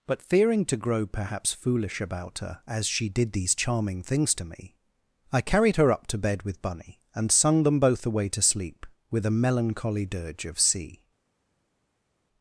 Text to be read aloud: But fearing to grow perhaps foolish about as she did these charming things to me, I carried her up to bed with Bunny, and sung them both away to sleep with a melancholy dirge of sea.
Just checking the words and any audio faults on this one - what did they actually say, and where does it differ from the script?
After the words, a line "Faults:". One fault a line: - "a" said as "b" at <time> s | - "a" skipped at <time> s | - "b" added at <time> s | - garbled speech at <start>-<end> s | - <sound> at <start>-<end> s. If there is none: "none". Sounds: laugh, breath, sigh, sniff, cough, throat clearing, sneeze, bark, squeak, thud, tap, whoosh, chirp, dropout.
But fearing to grow perhaps foolish about her, as she did these charming things to me, I carried her up to bed with Bunny, and sung them both away to sleep with a melancholy dirge of sea.
Faults:
- "her" added at 2.4 s